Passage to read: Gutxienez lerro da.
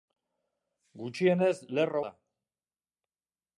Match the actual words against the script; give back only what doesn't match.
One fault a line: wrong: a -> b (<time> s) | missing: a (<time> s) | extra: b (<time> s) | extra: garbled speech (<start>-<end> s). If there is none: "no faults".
no faults